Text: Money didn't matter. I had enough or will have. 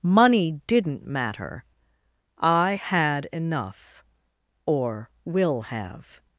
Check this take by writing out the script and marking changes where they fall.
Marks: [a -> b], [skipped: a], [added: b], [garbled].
Money didn't matter. I had enough or will have.